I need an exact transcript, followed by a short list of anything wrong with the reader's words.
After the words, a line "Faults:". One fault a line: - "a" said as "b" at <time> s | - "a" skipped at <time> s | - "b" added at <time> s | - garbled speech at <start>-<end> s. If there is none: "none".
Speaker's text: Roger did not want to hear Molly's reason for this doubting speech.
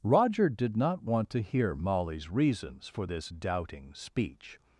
Roger did not want to hear Molly's reasons for this doubting speech.
Faults:
- "reason" said as "reasons" at 2.3 s